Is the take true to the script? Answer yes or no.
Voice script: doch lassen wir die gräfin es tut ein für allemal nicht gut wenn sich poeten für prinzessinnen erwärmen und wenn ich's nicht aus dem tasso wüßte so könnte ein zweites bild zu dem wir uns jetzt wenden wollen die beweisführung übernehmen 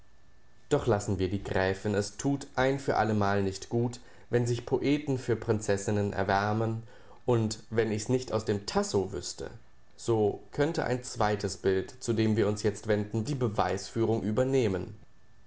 no